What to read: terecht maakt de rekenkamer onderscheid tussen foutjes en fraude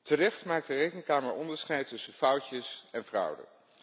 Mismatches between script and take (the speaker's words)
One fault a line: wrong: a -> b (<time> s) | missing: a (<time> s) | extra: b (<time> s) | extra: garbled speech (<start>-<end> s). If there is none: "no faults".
no faults